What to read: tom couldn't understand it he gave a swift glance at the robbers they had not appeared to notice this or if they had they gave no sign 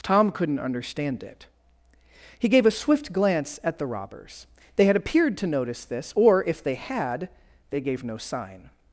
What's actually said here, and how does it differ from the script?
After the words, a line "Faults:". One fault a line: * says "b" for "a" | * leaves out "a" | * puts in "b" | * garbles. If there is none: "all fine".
tom couldn't understand it he gave a swift glance at the robbers they had appeared to notice this or if they had they gave no sign
Faults:
* leaves out "not"